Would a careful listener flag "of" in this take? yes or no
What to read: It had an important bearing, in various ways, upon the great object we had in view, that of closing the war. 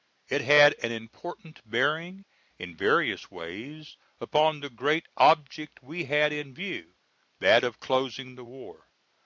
no